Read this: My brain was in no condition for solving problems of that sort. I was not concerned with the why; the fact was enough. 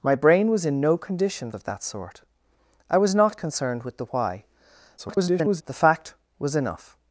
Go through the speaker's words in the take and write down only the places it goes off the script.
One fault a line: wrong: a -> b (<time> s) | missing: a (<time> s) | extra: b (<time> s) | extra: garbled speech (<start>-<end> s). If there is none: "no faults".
missing: for solving problems (1.5 s)
extra: garbled speech (5.0-5.6 s)